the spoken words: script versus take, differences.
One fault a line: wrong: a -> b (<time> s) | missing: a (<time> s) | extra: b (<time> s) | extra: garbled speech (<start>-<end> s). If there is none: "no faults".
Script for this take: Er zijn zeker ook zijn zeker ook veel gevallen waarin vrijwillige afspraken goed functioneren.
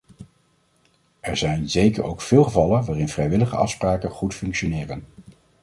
missing: zijn zeker ook (2.2 s)